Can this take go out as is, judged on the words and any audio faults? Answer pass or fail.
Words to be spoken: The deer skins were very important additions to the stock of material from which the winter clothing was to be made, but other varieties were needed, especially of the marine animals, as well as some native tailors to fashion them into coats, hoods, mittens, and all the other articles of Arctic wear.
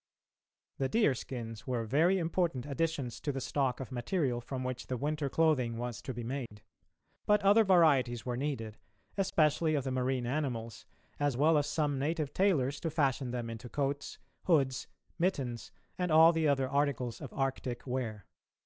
fail